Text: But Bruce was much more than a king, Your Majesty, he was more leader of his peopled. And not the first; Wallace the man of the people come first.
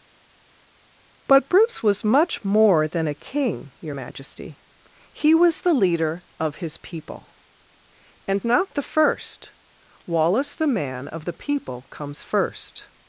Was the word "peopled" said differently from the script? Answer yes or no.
yes